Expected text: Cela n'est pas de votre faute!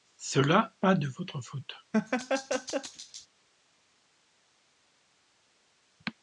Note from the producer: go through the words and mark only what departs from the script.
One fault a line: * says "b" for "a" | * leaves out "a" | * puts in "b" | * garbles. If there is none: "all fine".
* leaves out "n'est"